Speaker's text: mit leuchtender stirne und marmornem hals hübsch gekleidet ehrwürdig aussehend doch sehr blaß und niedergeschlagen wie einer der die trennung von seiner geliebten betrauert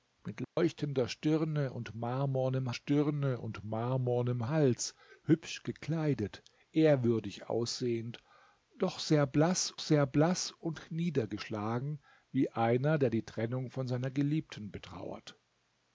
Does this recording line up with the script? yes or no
no